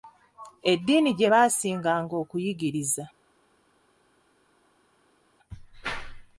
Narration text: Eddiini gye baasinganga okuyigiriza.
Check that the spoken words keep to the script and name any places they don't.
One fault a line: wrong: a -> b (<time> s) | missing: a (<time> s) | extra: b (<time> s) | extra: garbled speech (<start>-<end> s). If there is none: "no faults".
no faults